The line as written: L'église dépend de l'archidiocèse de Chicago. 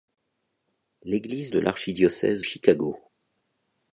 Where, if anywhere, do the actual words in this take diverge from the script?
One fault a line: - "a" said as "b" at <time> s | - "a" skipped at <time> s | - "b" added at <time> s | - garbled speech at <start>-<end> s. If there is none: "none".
- "dépend" skipped at 1.5 s
- "de" skipped at 2.4 s